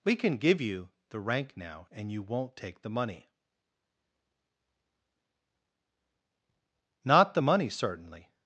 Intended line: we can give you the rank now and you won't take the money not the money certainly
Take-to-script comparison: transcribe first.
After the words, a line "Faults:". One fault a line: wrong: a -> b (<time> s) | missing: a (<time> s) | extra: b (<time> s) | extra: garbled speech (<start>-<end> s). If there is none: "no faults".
we can give you the rank now and you won't take the money not the money certainly
Faults:
no faults